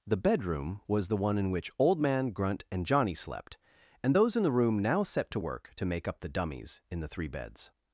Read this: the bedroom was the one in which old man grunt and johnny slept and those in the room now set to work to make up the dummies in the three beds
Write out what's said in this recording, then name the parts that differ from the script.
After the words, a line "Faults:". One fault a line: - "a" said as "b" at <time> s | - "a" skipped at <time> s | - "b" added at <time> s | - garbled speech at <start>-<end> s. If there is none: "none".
the bedroom was the one in which old man grunt and johnny slept and those in the room now set to work to make up the dummies in the three beds
Faults:
none